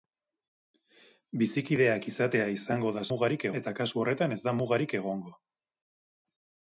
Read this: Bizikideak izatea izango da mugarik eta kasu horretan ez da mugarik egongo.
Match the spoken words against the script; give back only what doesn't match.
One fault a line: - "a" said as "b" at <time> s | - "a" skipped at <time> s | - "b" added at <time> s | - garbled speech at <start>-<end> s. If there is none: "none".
none